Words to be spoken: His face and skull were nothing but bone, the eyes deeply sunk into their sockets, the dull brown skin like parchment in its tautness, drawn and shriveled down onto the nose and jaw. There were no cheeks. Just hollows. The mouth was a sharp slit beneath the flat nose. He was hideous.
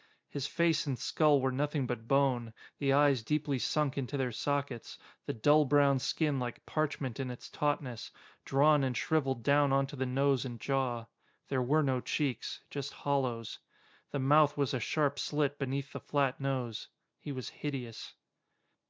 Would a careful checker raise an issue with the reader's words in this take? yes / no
no